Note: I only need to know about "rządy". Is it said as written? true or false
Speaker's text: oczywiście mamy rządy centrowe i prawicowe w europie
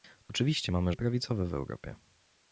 false